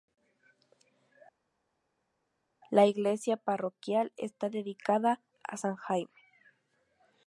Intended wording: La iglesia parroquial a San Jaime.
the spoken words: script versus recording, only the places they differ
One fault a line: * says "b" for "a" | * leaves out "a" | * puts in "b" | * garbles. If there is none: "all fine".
* puts in "está dedicada"